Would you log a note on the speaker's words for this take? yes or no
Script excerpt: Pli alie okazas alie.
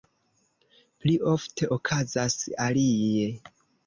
yes